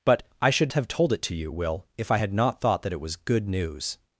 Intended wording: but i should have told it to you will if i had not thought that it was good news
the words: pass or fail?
pass